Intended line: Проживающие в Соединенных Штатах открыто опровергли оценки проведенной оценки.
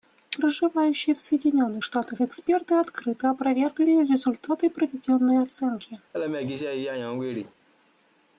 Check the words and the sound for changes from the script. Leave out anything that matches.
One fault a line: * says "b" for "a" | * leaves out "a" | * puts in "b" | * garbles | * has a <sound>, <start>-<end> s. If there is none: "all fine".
* puts in "эксперты"
* says "результаты" for "оценки"
* has a laugh, 6.1-7.6 s